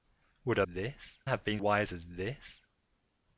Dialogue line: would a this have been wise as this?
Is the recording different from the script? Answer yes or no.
no